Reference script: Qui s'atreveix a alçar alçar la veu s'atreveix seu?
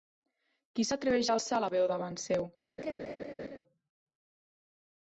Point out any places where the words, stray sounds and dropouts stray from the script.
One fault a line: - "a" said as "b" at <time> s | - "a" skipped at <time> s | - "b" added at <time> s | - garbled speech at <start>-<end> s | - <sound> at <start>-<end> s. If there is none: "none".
- "alçar" skipped at 1.6 s
- "s'atreveix" said as "davant" at 1.9 s
- laugh at 2.8-3.6 s